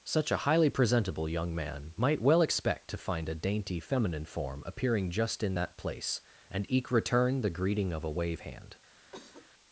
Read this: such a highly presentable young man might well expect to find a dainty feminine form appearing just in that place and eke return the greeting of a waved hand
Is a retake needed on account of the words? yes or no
yes